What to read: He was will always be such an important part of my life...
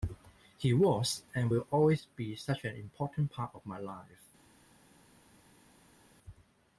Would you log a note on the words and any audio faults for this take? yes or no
yes